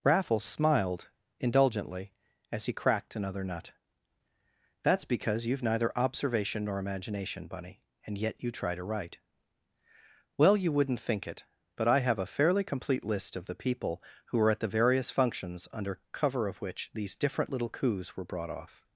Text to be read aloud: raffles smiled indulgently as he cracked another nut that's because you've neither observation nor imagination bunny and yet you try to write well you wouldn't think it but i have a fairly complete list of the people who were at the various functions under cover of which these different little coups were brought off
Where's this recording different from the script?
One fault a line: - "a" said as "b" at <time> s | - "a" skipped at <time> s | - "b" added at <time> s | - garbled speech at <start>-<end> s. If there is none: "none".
none